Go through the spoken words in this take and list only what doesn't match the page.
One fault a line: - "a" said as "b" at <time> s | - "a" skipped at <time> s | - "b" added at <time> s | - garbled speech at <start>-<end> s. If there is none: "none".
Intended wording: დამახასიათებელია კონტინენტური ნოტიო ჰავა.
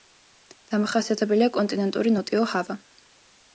none